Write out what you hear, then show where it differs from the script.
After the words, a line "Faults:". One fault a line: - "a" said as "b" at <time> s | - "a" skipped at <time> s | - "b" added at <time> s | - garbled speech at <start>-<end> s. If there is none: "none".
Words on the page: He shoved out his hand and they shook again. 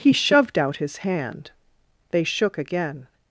He shoved out his hand they shook again.
Faults:
- "and" skipped at 1.5 s